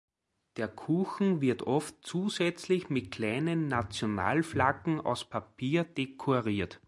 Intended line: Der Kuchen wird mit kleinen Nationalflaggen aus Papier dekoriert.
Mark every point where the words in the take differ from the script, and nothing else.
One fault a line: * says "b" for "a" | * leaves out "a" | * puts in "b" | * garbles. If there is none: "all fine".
* puts in "oft zusätzlich"